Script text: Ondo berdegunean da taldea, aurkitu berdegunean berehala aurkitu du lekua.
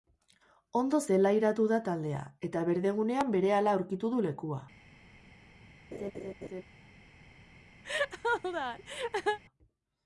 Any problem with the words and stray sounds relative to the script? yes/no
yes